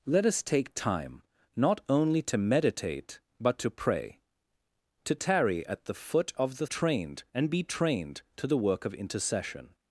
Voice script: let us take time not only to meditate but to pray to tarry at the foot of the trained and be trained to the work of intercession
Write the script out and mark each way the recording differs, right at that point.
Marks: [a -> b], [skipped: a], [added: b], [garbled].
let us take time not only to meditate but to pray to tarry at the foot of the trained and be trained to the work of intercession